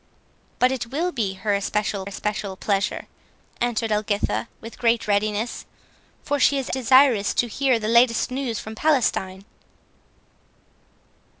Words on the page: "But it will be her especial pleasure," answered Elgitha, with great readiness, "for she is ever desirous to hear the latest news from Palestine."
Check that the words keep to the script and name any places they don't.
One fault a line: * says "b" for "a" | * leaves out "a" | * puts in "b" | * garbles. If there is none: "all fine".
* puts in "especial"
* leaves out "ever"